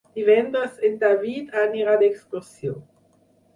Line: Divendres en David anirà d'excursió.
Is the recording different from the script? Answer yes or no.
no